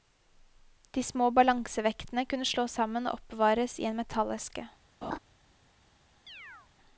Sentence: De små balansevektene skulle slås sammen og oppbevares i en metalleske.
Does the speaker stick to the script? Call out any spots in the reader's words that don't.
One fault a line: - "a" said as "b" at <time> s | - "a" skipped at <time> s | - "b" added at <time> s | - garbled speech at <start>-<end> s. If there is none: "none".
- "skulle" said as "kunne" at 2.2 s